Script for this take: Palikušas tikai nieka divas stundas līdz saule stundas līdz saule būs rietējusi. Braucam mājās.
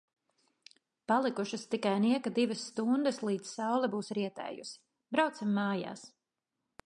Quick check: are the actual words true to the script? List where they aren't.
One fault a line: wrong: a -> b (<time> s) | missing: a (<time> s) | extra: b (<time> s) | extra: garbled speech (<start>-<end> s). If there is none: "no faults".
missing: stundas līdz saule (3.9 s)